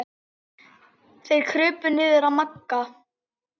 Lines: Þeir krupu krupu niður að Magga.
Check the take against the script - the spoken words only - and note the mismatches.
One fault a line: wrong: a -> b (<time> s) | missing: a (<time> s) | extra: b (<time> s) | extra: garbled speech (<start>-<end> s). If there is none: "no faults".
missing: krupu (1.9 s)